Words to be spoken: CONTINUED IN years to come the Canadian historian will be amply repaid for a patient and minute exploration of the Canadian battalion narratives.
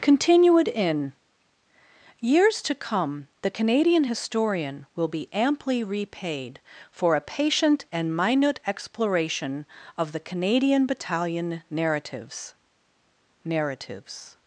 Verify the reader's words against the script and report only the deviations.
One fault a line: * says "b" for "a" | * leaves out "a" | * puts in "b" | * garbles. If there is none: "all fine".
* puts in "narratives"